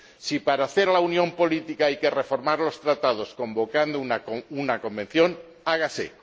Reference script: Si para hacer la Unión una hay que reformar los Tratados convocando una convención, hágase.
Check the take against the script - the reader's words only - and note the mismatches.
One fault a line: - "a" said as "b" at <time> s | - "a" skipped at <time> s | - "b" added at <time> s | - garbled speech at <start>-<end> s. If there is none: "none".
- "una" said as "política" at 1.3 s